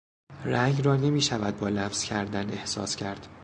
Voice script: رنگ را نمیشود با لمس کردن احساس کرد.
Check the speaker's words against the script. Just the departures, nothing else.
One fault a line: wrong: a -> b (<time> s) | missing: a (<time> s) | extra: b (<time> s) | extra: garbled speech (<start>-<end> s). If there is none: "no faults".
no faults